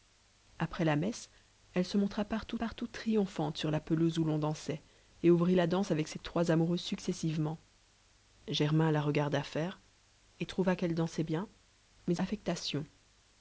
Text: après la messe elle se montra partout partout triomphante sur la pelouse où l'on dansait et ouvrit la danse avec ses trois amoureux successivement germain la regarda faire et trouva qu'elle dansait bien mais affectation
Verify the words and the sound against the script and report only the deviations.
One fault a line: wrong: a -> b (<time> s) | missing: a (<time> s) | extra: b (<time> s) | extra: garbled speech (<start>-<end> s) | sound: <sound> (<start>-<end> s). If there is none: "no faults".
no faults